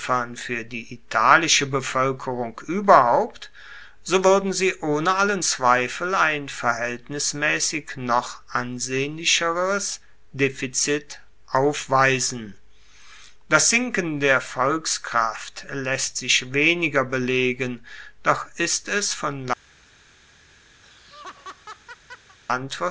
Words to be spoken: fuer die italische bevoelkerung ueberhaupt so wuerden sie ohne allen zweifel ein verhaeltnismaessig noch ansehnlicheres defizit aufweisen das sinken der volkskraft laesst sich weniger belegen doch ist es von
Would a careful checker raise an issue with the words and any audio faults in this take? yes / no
yes